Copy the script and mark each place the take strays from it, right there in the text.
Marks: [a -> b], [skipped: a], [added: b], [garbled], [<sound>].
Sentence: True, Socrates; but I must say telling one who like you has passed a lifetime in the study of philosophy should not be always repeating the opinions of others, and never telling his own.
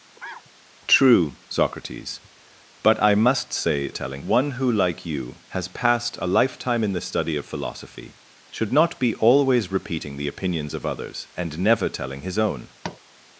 [cough] True, Socrates; but I must say telling one who like you has passed a lifetime in the study of philosophy should not be always repeating the opinions of others, and never telling his own. [tap]